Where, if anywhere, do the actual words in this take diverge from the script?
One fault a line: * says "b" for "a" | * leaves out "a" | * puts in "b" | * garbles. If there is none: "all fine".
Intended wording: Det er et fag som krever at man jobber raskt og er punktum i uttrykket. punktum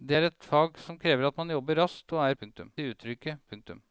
all fine